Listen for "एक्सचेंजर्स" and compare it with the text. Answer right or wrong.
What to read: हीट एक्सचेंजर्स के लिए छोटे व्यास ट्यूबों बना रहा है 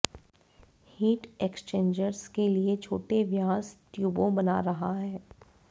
right